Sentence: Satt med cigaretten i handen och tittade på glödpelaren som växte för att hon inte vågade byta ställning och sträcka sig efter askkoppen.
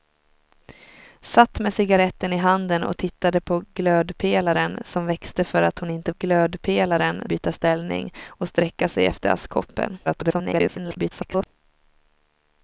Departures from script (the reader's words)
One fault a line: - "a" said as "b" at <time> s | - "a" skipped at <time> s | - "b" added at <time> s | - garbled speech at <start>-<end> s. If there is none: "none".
- "vågade" said as "glödpelaren" at 6.2 s
- garbled speech at 10.1-11.5 s